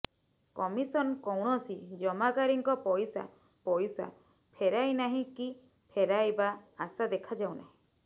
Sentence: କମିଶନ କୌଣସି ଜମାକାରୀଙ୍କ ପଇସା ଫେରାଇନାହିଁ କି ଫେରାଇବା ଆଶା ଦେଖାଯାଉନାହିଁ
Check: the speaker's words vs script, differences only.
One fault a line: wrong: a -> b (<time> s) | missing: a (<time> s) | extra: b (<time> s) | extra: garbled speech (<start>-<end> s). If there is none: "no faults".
extra: ପଇସା (3.7 s)